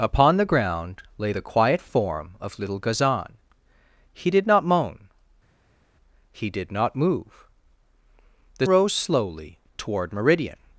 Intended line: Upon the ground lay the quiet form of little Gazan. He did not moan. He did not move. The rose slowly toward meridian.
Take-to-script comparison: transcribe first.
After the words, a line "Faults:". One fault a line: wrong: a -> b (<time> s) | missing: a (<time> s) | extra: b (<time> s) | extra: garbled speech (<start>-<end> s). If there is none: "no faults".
Upon the ground lay the quiet form of little Gazan. He did not moan. He did not move. The rose slowly toward meridian.
Faults:
no faults